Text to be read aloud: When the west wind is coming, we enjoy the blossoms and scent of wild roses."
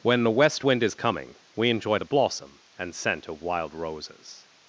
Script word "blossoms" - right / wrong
wrong